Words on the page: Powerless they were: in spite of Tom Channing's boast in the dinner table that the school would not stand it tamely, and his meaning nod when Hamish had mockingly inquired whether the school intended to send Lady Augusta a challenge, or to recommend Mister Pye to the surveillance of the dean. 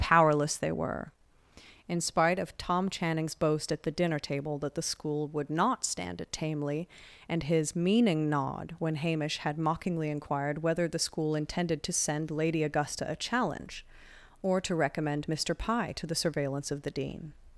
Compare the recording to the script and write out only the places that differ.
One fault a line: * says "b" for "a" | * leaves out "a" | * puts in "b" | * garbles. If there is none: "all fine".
* says "at" for "in"